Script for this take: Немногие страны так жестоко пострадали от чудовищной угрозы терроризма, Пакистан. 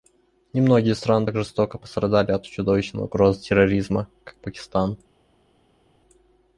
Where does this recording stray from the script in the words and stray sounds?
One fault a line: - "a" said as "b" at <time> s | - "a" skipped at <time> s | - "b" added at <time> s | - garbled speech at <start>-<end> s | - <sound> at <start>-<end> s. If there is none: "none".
- "как" added at 4.2 s